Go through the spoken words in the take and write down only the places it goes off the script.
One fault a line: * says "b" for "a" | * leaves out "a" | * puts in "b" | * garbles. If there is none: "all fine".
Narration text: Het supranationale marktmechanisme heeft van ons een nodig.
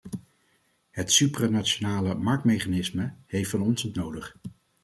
all fine